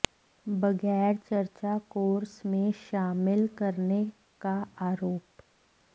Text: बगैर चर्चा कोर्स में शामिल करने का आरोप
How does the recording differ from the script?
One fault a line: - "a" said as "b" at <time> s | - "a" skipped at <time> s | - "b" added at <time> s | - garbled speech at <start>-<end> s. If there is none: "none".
none